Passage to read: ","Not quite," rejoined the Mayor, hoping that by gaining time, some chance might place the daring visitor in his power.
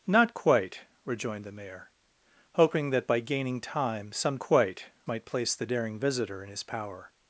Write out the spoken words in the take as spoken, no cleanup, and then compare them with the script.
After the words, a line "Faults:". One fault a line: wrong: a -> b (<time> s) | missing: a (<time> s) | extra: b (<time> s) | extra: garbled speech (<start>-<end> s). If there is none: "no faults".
","Not quite," rejoined the Mayor, hoping that by gaining time, some quite might place the daring visitor in his power.
Faults:
wrong: chance -> quite (4.4 s)